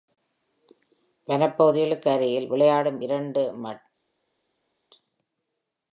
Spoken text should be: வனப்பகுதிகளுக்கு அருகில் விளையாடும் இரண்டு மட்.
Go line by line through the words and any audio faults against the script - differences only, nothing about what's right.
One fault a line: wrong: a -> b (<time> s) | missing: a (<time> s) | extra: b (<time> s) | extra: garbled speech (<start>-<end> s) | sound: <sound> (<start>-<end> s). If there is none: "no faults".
no faults